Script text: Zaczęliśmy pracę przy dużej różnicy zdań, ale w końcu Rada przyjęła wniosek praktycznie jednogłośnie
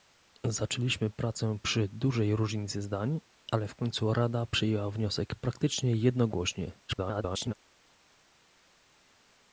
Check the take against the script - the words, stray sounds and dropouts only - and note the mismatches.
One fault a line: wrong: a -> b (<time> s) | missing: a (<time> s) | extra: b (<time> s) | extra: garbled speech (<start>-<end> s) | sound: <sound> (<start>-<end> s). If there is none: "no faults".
extra: garbled speech (6.9-7.5 s)